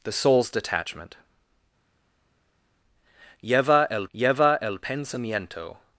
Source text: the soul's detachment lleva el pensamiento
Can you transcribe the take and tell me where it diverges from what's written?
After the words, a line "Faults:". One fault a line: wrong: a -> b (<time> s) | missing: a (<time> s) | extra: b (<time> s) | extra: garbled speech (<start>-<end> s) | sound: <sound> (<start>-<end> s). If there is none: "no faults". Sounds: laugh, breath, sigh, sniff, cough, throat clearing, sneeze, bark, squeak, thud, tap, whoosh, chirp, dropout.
the soul's detachment lleva el lleva el pensamiento
Faults:
extra: lleva el (4.1 s)